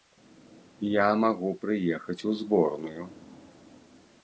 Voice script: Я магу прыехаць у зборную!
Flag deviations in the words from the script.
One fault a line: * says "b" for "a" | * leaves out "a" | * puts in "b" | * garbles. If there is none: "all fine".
all fine